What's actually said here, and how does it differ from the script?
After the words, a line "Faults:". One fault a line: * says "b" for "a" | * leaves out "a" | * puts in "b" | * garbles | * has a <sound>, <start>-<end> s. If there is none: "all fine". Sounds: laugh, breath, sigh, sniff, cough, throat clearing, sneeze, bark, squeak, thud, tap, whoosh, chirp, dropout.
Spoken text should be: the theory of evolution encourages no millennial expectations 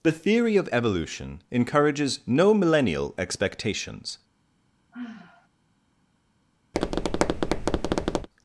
the theory of evolution encourages no millennial expectations
Faults:
* has a sigh, 4.9-5.5 s
* has a tap, 6.7-8.3 s